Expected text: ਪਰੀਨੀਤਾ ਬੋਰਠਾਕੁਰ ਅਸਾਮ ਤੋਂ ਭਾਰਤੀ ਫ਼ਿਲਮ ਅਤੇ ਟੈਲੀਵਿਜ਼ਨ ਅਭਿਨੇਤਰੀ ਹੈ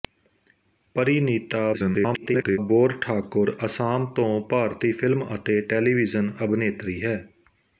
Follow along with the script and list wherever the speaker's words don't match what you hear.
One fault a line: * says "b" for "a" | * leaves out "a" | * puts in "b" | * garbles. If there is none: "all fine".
* garbles